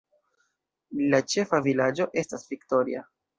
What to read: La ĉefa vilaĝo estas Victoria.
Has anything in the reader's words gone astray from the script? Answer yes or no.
no